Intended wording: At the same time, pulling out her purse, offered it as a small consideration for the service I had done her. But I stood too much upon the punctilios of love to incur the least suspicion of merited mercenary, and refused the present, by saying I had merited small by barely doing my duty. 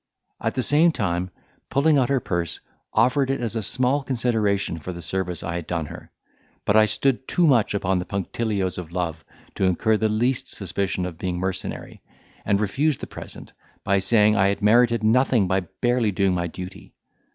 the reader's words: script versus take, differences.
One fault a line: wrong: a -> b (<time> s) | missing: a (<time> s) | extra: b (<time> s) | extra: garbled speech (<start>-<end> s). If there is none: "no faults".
wrong: merited -> being (11.2 s)
wrong: small -> nothing (15.0 s)